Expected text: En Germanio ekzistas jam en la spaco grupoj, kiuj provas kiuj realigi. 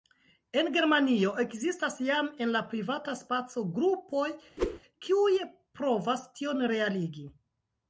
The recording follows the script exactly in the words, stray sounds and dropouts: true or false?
false